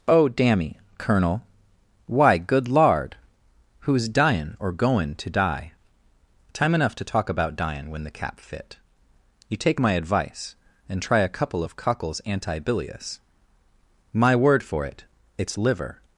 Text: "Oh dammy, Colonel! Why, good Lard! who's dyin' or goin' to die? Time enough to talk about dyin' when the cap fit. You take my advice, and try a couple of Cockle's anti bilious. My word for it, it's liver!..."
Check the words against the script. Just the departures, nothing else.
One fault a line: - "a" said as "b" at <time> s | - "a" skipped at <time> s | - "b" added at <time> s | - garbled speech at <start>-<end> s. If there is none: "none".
none